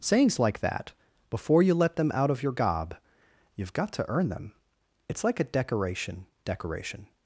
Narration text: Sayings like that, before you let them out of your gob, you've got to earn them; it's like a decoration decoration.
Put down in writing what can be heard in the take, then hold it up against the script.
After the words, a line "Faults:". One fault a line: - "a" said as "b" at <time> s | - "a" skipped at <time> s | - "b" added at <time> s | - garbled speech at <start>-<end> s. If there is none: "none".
Sayings like that, before you let them out of your gob, you've got to earn them; it's like a decoration decoration.
Faults:
none